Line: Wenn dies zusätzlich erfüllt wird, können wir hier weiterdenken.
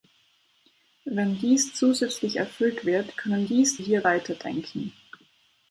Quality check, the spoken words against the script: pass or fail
fail